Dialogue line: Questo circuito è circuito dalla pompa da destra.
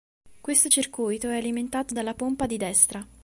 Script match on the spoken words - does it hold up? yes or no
no